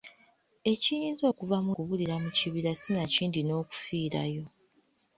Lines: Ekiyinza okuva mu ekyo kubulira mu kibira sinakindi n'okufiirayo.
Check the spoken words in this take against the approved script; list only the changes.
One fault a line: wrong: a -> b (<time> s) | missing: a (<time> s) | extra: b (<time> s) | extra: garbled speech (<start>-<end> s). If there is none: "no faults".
missing: ekyo (1.7 s)